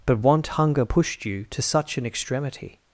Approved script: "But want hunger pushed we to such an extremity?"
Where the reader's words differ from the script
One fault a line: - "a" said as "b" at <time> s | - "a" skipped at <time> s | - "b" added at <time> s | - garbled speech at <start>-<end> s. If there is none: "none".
- "we" said as "you" at 1.3 s